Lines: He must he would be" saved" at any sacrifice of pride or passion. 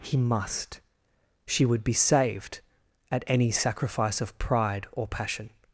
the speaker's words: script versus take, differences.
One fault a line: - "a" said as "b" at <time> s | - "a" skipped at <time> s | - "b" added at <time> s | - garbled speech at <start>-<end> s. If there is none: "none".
- "he" said as "she" at 1.4 s